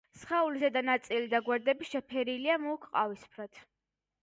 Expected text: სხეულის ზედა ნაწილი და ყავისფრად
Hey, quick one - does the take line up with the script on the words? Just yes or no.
no